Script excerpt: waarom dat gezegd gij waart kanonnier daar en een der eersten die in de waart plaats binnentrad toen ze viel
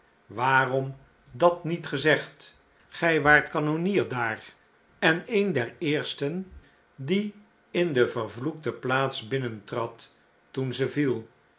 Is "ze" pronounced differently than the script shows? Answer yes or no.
no